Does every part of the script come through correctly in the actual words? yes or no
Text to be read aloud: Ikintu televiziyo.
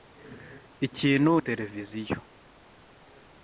yes